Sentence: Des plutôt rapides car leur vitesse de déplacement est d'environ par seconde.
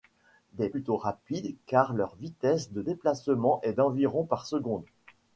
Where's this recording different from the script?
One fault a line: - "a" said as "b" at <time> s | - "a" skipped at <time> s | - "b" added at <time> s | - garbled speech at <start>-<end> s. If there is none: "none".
none